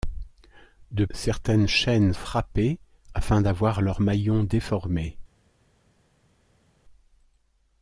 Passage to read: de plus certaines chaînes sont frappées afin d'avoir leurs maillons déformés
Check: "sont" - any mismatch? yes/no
yes